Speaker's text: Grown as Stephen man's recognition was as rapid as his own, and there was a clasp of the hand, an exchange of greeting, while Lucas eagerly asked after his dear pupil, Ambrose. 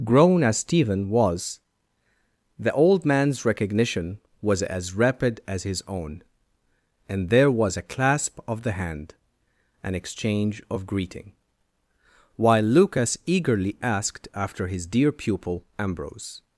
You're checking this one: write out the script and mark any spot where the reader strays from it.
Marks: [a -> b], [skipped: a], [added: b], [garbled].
Grown as Stephen [added: was the old] man's recognition was as rapid as his own, and there was a clasp of the hand, an exchange of greeting, while Lucas eagerly asked after his dear pupil, Ambrose.